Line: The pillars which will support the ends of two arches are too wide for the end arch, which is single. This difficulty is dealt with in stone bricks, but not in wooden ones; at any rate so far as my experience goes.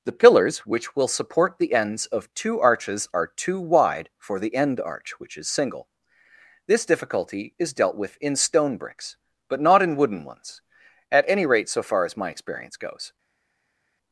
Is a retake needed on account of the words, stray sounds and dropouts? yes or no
no